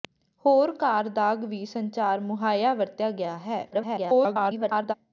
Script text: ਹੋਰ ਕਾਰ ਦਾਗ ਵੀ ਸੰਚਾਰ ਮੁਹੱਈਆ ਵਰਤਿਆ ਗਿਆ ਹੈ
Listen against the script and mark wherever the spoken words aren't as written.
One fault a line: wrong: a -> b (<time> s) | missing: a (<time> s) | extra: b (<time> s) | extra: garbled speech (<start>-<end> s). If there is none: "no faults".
extra: garbled speech (3.7-4.9 s)